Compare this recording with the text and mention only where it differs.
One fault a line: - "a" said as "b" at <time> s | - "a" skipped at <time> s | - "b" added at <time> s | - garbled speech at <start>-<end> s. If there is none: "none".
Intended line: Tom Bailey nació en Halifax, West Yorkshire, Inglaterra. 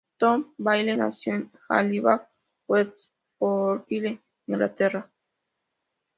none